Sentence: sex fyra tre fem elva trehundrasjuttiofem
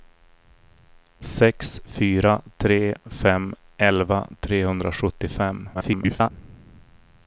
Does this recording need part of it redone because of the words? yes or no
yes